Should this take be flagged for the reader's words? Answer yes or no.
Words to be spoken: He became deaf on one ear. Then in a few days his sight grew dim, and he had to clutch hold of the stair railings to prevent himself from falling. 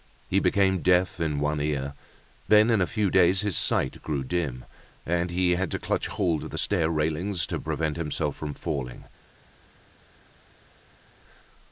yes